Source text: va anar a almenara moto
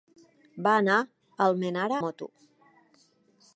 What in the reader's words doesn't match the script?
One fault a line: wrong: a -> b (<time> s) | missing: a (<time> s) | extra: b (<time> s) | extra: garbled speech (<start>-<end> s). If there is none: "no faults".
no faults